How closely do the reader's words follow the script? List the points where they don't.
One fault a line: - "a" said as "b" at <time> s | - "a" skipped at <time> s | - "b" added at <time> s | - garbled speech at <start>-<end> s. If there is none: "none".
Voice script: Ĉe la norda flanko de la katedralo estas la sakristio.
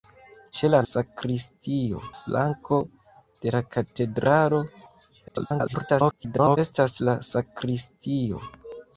- "norda" said as "sakristio" at 0.9 s
- garbled speech at 5.3-6.6 s